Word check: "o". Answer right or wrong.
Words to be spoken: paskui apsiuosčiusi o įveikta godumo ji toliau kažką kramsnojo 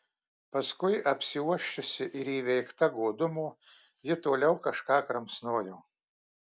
wrong